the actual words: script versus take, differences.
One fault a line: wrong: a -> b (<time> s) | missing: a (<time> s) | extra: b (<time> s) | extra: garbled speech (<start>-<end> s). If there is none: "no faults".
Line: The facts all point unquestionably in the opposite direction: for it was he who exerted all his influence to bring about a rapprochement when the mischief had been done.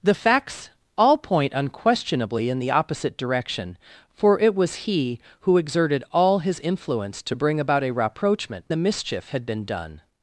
missing: when (8.7 s)